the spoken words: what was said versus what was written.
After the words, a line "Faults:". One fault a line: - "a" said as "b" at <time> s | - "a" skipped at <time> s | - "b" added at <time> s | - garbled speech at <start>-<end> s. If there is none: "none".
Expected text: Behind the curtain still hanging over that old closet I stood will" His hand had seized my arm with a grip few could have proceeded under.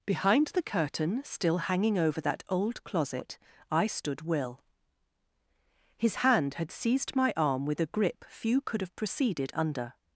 Behind the curtain still hanging over that old closet I stood will" His hand had seized my arm with a grip few could have proceeded under.
Faults:
none